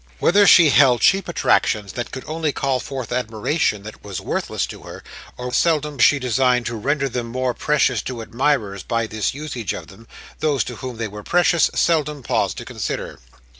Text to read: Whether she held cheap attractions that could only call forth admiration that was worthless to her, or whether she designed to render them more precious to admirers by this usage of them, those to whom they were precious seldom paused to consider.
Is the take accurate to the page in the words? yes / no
no